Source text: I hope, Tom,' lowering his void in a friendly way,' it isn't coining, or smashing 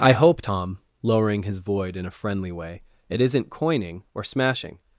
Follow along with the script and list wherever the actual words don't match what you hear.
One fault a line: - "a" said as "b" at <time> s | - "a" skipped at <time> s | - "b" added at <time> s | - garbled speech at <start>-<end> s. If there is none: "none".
none